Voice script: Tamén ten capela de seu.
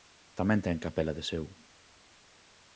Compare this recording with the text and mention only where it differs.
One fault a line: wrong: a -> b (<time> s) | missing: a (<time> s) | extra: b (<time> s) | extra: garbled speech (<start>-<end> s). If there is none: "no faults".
no faults